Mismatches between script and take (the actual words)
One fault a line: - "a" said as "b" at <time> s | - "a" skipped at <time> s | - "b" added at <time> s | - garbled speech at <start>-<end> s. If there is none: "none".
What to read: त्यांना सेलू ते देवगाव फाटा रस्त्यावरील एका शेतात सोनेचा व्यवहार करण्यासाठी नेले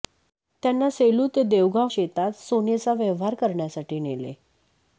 - "फाटा रस्त्यावरील एका" skipped at 1.9 s